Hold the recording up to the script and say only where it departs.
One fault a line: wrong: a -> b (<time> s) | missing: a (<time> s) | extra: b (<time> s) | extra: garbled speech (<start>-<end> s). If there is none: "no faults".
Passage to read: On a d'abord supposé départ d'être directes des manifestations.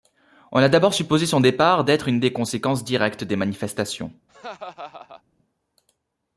extra: son (1.3 s)
extra: une des conséquences (2.1 s)